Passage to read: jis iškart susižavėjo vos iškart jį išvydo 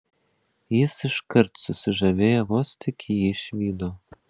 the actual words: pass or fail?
fail